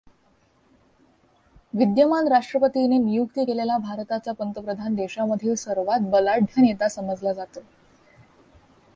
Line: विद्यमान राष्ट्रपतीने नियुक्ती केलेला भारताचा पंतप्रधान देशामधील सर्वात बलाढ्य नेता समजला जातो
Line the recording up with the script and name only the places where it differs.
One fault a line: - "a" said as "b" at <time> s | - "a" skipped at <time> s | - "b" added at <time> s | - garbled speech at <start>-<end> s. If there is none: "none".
none